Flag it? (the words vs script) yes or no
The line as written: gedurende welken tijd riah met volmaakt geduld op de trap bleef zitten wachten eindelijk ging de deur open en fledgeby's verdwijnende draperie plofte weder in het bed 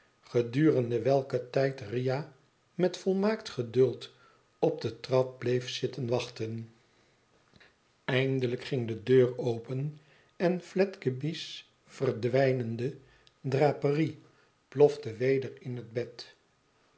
no